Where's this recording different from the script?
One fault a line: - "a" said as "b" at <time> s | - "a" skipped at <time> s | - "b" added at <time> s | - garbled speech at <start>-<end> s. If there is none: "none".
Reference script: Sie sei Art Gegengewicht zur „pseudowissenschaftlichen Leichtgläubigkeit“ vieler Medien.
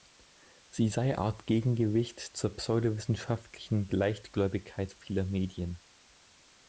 none